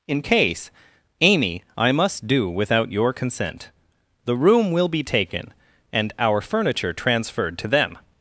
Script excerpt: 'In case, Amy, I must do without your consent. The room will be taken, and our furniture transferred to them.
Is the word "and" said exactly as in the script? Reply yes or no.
yes